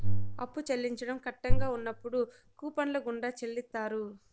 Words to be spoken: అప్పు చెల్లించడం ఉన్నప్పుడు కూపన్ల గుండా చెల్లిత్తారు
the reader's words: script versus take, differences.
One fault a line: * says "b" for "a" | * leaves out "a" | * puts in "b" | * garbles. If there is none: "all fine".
* puts in "కట్టంగా"